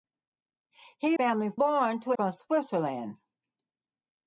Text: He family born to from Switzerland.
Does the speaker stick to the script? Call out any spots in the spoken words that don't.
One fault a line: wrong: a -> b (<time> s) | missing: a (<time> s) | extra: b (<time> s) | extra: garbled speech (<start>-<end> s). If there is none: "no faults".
no faults